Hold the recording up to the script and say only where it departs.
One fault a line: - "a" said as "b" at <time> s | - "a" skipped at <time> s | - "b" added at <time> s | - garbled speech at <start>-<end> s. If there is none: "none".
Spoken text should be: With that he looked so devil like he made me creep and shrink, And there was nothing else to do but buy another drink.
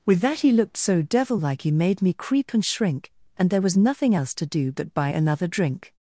none